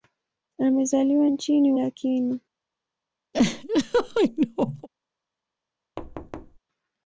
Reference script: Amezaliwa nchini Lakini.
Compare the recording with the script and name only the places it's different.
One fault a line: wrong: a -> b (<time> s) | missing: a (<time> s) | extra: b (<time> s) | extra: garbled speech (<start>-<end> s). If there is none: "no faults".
no faults